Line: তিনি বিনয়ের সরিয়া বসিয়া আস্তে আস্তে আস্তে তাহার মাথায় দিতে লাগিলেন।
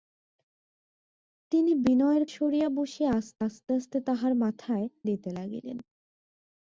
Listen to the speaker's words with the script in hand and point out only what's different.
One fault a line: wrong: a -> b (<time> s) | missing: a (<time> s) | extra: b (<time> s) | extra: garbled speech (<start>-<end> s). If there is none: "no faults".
no faults